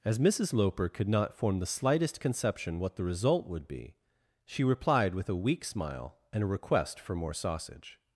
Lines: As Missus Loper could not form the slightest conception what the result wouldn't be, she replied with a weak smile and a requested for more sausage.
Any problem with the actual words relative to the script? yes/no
yes